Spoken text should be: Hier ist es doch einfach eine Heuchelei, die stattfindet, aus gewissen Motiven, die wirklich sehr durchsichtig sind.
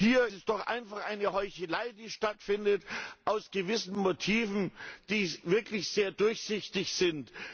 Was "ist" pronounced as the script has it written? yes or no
no